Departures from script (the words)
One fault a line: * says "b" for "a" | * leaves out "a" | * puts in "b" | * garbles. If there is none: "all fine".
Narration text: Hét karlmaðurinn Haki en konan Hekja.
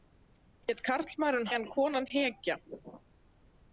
* leaves out "Haki"